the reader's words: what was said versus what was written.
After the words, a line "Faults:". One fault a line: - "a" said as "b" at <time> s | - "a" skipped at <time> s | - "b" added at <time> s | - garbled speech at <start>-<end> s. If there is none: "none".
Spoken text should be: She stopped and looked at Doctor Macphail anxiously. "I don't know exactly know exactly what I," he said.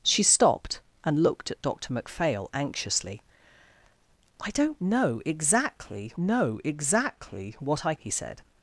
She stopped and looked at Doctor Macphail anxiously. "I don't know exactly know exactly what I," he said.
Faults:
none